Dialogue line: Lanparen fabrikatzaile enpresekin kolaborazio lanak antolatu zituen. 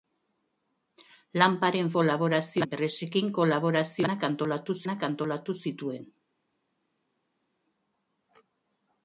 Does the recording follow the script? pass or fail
fail